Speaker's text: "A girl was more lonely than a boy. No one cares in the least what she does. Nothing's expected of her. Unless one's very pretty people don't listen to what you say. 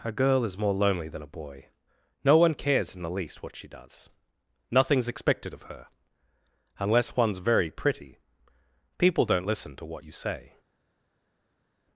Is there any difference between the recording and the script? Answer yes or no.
yes